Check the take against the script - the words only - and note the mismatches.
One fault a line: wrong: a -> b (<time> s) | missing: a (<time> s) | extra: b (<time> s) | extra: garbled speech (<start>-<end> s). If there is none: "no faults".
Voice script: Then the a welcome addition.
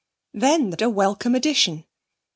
no faults